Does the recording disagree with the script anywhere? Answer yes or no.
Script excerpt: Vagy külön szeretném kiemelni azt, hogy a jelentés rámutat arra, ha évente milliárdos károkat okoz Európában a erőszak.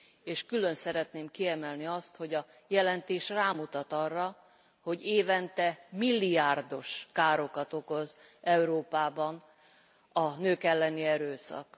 yes